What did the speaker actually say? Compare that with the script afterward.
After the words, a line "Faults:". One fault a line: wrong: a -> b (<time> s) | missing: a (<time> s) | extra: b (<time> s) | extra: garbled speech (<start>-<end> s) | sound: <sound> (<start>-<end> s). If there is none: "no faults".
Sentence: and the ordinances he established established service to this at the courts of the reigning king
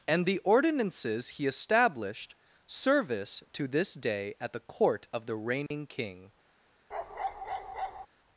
and the ordinances he established service to this day at the court of the reigning king
Faults:
missing: established (2.3 s)
extra: day (3.9 s)
wrong: courts -> court (4.6 s)
sound: dropout (5.7-5.7 s)
sound: bark (6.9-8.1 s)